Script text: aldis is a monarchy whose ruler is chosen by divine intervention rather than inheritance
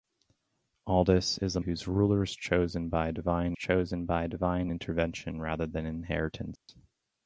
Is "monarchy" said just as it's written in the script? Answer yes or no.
no